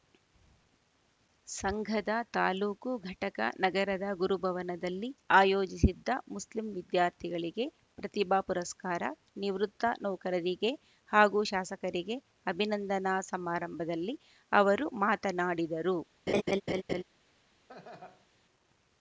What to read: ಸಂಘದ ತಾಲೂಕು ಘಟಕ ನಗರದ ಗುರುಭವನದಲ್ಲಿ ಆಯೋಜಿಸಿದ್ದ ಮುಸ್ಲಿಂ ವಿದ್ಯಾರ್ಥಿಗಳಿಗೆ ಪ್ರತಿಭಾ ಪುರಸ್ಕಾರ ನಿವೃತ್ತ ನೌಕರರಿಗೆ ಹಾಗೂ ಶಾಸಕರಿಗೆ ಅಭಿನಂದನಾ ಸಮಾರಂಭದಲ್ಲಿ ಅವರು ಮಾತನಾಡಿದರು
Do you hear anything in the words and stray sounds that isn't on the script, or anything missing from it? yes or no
yes